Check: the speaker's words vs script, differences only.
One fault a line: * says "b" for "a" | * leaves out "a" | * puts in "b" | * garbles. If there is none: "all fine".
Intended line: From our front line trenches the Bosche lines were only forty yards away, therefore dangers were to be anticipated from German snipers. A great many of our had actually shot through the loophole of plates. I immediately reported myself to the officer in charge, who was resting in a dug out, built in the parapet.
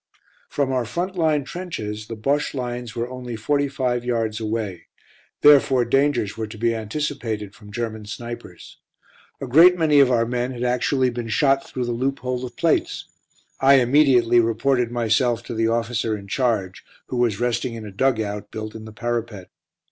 * puts in "five"
* puts in "men"
* puts in "been"